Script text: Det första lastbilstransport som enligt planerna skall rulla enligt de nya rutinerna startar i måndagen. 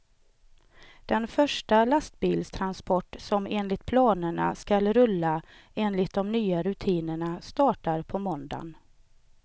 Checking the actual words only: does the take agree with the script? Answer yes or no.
no